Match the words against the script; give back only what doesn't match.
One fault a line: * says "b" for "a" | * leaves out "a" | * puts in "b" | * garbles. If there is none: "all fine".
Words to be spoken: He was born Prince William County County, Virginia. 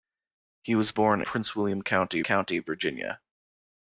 all fine